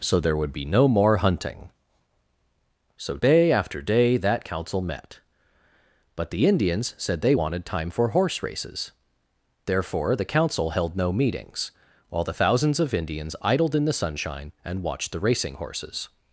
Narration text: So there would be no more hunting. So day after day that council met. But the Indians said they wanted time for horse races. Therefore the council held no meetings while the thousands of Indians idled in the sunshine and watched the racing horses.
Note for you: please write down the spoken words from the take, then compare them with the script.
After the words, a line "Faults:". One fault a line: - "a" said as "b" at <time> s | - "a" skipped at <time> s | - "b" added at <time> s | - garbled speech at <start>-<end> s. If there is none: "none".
So there would be no more hunting. So day after day that council met. But the Indians said they wanted time for horse races. Therefore the council held no meetings while the thousands of Indians idled in the sunshine and watched the racing horses.
Faults:
none